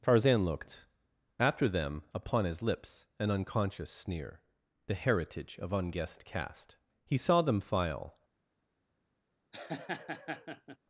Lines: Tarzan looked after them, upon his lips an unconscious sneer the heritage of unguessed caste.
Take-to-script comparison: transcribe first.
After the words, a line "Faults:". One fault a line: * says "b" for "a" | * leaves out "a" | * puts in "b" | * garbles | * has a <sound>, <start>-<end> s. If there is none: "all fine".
Tarzan looked after them, upon his lips an unconscious sneer the heritage of unguessed caste. He saw them file
Faults:
* puts in "He saw them file"
* has a laugh, 9.5-10.8 s